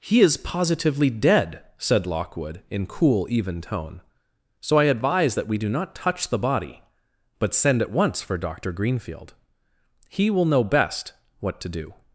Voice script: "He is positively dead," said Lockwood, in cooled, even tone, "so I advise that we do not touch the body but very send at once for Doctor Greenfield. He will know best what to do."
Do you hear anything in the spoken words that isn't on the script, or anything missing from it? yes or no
yes